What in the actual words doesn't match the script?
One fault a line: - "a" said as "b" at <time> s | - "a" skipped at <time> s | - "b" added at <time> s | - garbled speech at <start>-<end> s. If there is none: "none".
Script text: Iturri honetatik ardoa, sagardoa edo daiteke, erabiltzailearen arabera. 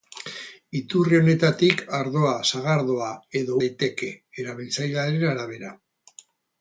none